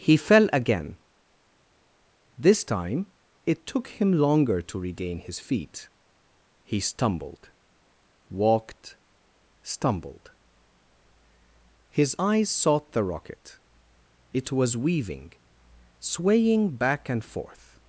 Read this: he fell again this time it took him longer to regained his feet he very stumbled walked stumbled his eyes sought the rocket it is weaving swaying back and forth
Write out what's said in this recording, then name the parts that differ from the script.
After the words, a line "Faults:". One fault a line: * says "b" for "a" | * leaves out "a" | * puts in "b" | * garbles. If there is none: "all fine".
he fell again this time it took him longer to regain his feet he stumbled walked stumbled his eyes sought the rocket it was weaving swaying back and forth
Faults:
* says "regain" for "regained"
* leaves out "very"
* says "was" for "is"